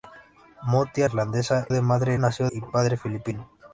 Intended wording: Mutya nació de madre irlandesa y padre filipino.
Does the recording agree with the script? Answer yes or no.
no